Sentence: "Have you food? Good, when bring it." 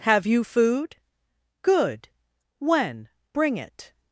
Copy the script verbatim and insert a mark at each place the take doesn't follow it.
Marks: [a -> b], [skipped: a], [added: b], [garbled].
"Have you food? Good, when bring it."